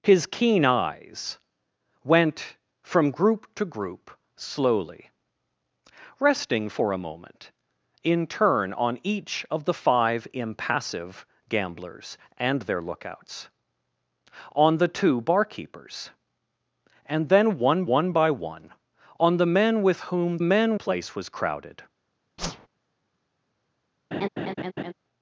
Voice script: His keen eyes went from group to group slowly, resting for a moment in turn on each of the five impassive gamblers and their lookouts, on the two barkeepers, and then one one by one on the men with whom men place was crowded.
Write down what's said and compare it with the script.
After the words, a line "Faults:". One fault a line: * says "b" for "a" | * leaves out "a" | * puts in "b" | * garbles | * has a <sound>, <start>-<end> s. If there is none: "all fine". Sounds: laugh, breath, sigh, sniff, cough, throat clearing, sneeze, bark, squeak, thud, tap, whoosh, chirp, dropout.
His keen eyes went from group to group slowly, resting for a moment in turn on each of the five impassive gamblers and their lookouts, on the two barkeepers, and then one one by one on the men with whom men place was crowded.
Faults:
* has a whoosh, 22.4-22.7 s
* has a laugh, 24.1-24.9 s